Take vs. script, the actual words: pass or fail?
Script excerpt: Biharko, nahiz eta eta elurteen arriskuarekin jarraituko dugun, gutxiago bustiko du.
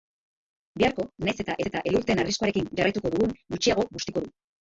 pass